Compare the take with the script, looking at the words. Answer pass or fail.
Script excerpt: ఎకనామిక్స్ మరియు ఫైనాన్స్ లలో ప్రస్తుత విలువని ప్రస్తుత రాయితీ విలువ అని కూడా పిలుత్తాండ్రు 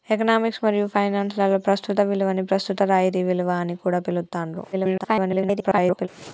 fail